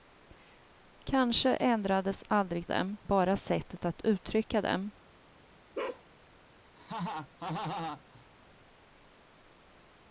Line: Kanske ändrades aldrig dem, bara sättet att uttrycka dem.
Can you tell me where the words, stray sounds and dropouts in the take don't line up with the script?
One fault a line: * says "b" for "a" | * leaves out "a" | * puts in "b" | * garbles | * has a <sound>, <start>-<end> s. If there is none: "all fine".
* has a bark, 5.7-6.0 s
* has a laugh, 6.8-8.3 s